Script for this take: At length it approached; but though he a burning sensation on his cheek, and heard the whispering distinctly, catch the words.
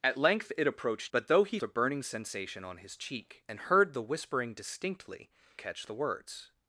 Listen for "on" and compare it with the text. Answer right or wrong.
right